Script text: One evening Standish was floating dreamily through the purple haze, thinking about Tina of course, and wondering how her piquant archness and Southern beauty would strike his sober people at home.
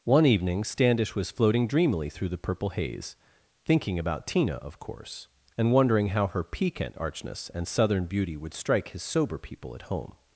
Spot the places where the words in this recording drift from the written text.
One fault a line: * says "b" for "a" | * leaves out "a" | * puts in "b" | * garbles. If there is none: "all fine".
all fine